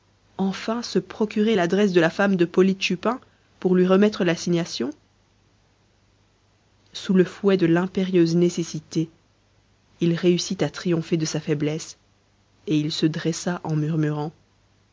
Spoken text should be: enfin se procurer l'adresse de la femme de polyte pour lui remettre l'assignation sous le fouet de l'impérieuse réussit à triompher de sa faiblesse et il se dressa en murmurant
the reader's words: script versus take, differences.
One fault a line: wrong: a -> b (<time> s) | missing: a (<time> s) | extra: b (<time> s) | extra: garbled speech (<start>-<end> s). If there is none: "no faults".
extra: chupin (2.8 s)
extra: nécessité il (8.3 s)